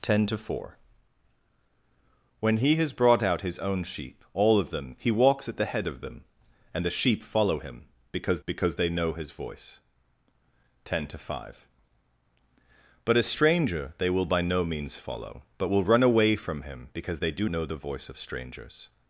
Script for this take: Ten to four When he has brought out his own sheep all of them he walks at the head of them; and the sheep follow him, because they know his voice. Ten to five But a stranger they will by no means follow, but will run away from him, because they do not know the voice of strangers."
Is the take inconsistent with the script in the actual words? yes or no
yes